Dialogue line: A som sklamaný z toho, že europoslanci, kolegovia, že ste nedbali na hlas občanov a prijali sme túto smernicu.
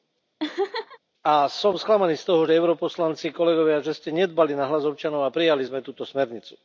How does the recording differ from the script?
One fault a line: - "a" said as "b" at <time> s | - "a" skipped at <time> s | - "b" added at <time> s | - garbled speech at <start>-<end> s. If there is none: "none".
none